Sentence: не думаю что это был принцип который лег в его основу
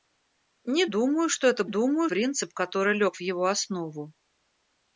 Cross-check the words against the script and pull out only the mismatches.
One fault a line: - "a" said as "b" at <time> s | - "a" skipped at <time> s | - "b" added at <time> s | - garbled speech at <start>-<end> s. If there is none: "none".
- "был" said as "думаю" at 1.7 s